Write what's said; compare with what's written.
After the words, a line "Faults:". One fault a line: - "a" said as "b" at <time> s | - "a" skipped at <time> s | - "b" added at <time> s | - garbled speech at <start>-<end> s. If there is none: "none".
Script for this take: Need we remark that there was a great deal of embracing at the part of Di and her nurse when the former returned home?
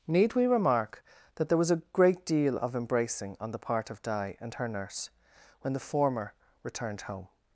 Need we remark that there was a great deal of embracing on the part of Di and her nurse when the former returned home?
Faults:
- "at" said as "on" at 3.4 s